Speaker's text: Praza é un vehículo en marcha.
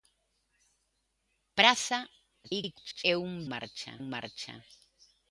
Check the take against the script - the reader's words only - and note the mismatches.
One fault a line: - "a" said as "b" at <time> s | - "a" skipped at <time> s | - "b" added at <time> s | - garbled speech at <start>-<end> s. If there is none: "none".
- garbled speech at 2.4-3.0 s
- "vehículo" said as "marcha" at 3.5 s